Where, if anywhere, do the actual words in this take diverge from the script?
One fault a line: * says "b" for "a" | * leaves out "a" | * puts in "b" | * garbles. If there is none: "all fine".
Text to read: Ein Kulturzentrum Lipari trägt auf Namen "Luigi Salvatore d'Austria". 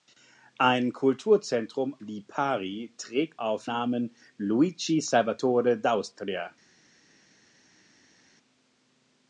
all fine